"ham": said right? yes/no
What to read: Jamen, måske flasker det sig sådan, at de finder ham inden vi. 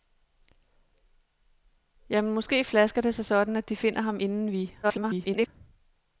yes